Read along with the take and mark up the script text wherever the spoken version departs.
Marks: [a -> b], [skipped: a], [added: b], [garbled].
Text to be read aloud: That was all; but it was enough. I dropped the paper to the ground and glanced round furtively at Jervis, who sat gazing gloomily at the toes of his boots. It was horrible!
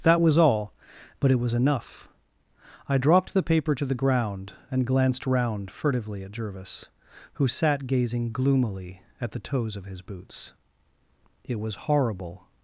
That was all; but it was enough. I dropped the paper to the ground and glanced round furtively at Jervis, who sat gazing gloomily at the toes of his boots. It was horrible!